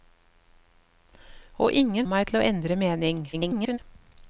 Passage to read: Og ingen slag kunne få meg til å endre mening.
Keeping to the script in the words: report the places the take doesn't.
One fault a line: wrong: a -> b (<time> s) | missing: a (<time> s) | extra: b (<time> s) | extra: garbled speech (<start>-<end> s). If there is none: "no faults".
missing: slag kunne få (2.1 s)
extra: garbled speech (3.3-3.8 s)